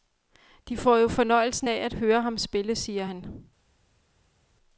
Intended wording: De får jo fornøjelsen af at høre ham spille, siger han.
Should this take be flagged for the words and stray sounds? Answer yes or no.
no